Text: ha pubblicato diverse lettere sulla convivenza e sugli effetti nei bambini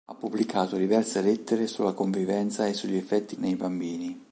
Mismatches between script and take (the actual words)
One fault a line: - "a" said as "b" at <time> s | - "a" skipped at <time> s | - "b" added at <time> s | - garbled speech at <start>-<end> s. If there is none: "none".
none